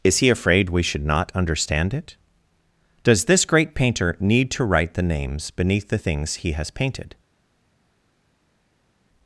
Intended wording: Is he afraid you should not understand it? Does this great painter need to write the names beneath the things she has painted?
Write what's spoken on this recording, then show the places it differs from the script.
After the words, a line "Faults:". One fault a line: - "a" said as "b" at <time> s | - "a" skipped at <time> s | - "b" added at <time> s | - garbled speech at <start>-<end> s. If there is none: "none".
Is he afraid we should not understand it? Does this great painter need to write the names beneath the things he has painted?
Faults:
- "you" said as "we" at 0.7 s
- "she" said as "he" at 6.3 s